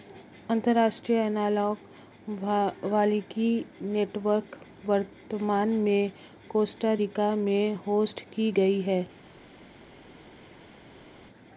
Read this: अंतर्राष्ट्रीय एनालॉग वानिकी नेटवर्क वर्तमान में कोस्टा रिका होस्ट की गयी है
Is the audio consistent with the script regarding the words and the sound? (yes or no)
no